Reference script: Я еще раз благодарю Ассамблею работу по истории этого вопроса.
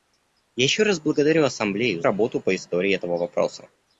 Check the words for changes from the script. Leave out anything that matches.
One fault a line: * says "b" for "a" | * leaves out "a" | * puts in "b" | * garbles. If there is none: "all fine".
all fine